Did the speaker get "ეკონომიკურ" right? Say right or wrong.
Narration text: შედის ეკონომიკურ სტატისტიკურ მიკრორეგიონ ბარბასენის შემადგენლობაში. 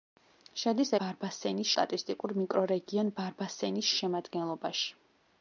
wrong